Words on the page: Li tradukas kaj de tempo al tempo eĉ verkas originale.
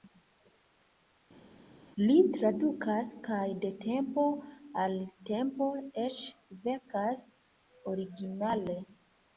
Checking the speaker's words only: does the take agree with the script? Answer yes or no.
yes